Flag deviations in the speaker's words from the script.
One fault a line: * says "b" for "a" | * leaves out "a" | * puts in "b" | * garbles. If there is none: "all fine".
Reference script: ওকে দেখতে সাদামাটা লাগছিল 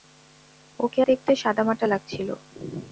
all fine